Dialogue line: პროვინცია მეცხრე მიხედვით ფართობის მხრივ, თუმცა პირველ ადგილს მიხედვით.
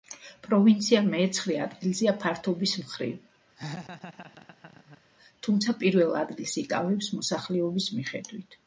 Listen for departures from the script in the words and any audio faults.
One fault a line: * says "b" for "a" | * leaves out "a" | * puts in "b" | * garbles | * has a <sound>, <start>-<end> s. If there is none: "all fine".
* says "ადგილზეა" for "მიხედვით"
* has a laugh, 3.6-5.0 s
* puts in "იკავებს მოსახლეობის"